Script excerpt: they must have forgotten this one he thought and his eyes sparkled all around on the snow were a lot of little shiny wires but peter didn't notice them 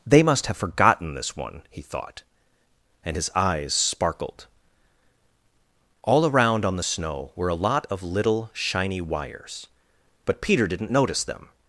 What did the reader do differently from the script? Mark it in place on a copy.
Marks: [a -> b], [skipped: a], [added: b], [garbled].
they must have forgotten this one he thought and his eyes sparkled all around on the snow were a lot of little shiny wires but peter didn't notice them